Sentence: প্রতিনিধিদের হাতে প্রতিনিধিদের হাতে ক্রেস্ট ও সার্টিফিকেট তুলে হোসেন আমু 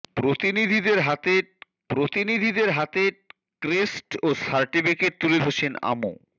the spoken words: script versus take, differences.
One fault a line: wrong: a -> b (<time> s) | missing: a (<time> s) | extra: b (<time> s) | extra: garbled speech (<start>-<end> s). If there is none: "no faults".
no faults